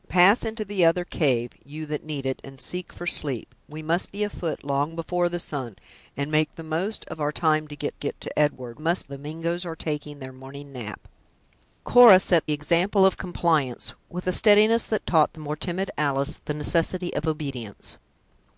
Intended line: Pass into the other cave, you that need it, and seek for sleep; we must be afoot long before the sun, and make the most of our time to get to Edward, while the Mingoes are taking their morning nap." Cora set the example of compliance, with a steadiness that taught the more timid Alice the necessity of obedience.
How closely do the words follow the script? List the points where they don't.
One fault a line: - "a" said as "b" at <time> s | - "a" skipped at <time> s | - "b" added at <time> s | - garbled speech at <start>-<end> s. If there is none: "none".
- "get" added at 8.0 s
- "while" said as "must" at 8.8 s
- "the" skipped at 12.5 s